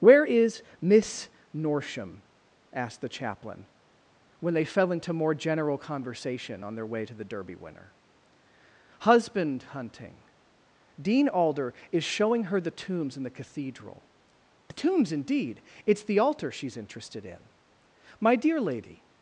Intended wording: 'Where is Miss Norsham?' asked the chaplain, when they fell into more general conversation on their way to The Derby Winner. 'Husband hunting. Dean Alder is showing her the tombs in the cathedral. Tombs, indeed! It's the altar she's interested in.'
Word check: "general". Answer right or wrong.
right